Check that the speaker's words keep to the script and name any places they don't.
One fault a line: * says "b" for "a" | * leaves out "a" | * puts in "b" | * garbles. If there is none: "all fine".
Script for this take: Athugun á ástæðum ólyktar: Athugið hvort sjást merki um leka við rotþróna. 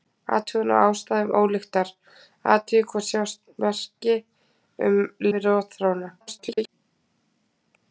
* leaves out "leka"
* garbles